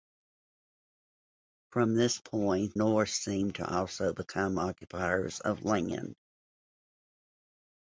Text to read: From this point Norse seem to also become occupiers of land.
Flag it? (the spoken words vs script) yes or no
no